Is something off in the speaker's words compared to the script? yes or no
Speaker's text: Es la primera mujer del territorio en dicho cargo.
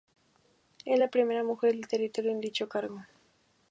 no